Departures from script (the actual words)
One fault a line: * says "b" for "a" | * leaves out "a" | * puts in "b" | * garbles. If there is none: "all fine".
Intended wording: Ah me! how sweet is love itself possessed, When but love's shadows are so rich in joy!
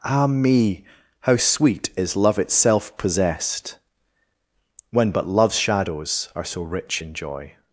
all fine